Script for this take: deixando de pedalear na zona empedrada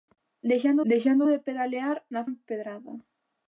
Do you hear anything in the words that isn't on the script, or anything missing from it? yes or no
yes